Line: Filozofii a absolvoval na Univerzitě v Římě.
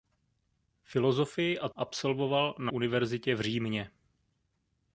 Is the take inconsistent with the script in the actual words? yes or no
no